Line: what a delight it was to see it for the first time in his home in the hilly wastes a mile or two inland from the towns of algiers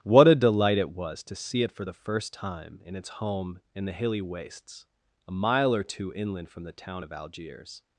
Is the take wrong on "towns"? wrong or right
wrong